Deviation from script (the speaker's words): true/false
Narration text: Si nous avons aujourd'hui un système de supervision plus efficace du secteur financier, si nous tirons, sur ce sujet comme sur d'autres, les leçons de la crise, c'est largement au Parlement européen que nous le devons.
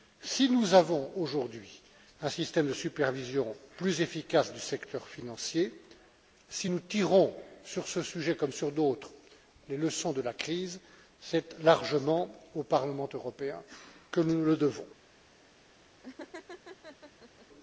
false